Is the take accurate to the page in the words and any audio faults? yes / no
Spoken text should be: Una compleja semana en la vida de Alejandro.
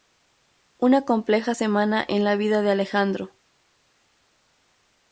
yes